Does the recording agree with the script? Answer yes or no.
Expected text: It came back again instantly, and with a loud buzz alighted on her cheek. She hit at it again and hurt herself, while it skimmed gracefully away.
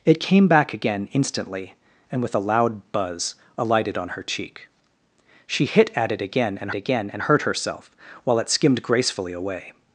no